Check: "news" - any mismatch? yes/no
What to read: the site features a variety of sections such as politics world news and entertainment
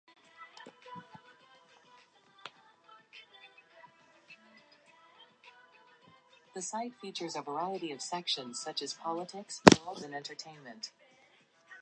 yes